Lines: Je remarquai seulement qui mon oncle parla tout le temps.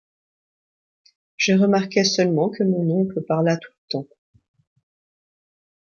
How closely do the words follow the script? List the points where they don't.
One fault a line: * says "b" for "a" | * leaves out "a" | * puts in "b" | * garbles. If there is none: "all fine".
* says "que" for "qui"